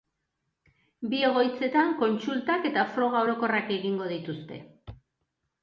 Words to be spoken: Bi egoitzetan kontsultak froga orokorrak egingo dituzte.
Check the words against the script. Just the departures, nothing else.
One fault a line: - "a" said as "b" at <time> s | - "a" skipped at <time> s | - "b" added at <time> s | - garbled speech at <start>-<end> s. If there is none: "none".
- "eta" added at 2.7 s